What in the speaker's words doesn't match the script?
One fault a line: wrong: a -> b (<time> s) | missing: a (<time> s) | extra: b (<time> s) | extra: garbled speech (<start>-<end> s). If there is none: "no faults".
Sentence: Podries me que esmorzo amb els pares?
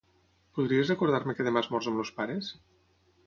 extra: recordar (0.9 s)
extra: demà (1.5 s)